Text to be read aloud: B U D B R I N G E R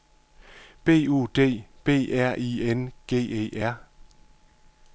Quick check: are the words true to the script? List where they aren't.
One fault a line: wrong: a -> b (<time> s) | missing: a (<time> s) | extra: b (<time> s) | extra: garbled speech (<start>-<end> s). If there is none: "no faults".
no faults